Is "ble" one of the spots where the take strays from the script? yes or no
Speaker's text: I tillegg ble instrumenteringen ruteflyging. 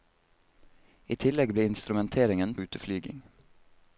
no